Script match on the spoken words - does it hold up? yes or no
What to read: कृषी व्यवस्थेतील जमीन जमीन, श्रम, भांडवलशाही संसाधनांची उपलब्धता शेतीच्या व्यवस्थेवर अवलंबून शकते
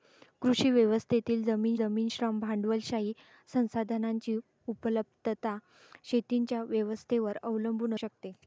yes